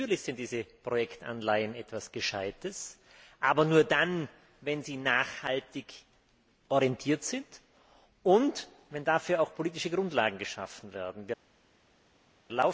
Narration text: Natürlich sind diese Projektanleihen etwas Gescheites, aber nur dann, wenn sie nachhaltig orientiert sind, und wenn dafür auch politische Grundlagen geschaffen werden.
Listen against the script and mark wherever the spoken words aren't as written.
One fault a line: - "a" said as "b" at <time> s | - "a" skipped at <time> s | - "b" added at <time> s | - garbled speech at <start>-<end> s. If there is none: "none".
none